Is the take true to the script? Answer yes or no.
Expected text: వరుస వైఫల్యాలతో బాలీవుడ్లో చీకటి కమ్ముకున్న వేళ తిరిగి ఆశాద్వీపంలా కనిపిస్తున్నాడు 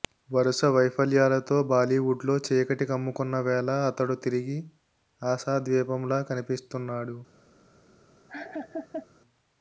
no